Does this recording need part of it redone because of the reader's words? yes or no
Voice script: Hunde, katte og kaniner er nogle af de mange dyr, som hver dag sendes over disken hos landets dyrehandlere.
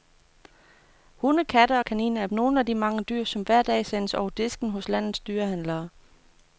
no